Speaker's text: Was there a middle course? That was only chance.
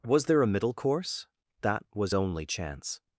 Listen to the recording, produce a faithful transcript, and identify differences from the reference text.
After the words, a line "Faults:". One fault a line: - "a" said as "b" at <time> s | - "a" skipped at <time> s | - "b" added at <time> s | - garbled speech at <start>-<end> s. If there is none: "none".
Was there a middle course? That was only chance.
Faults:
none